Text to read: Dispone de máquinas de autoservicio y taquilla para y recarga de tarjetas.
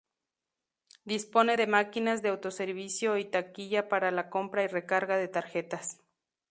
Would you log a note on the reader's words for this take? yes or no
yes